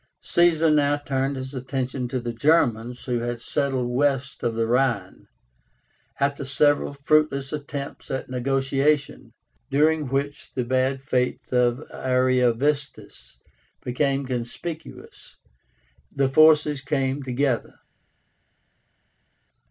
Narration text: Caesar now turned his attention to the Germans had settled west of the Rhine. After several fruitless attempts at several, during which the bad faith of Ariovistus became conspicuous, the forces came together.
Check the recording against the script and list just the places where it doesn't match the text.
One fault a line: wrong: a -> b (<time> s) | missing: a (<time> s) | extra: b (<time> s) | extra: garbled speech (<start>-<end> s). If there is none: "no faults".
extra: who (3.0 s)
wrong: several -> negotiation (8.3 s)